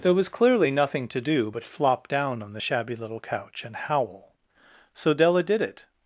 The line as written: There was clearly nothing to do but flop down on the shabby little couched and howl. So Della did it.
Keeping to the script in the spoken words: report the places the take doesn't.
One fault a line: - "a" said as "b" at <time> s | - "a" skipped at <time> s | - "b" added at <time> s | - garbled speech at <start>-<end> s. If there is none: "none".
- "couched" said as "couch" at 3.2 s